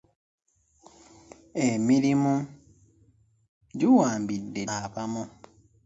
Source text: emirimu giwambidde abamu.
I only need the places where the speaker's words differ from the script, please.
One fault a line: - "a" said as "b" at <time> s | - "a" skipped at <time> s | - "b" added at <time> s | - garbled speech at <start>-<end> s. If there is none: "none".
none